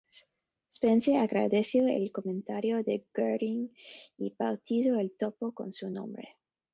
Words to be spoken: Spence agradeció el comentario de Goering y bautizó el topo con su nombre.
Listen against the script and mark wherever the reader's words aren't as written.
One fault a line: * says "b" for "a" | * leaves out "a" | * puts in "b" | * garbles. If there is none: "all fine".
all fine